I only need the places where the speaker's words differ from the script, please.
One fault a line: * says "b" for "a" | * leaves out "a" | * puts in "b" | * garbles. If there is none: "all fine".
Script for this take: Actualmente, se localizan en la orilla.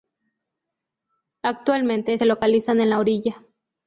all fine